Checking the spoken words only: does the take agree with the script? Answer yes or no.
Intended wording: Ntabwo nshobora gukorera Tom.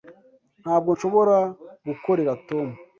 yes